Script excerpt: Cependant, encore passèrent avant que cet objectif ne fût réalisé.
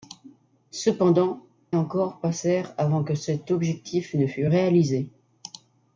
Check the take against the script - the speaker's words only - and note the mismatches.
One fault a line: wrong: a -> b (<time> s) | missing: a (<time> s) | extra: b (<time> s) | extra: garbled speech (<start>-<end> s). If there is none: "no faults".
no faults